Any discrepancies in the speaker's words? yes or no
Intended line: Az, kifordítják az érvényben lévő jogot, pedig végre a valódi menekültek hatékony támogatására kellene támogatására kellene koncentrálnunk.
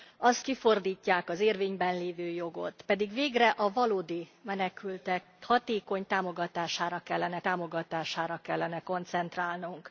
no